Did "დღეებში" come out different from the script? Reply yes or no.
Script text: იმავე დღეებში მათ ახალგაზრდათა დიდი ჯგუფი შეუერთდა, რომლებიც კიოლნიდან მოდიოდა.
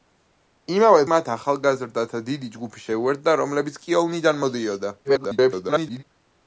yes